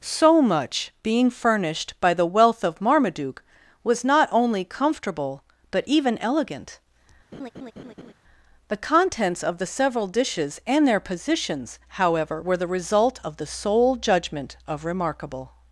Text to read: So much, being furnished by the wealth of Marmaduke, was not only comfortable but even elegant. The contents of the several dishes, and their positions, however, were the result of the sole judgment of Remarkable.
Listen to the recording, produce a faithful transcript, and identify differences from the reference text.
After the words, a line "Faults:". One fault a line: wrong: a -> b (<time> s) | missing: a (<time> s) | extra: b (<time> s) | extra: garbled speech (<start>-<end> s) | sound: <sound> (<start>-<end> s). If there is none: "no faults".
So much, being furnished by the wealth of Marmaduke, was not only comfortable but even elegant. The contents of the several dishes, and their positions, however, were the result of the sole judgment of Remarkable.
Faults:
sound: laugh (7.3-8.1 s)